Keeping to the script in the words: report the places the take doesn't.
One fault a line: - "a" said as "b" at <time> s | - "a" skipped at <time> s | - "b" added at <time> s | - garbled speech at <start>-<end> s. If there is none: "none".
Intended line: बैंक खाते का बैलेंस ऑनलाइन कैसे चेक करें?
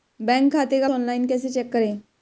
- "बैलेंस" skipped at 0.9 s